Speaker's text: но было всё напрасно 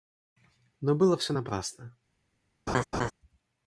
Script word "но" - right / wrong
right